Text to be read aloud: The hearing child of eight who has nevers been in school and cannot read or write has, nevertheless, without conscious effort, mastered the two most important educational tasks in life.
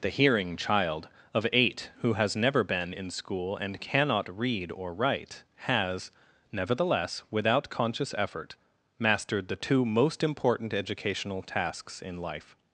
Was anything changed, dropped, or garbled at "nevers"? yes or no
yes